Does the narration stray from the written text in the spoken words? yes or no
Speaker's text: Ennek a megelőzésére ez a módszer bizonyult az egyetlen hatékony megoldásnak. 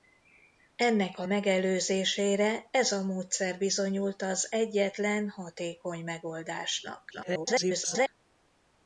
yes